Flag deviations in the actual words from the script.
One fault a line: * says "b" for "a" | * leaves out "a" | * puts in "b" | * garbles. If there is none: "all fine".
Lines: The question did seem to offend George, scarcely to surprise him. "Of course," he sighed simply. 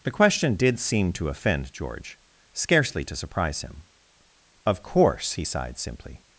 all fine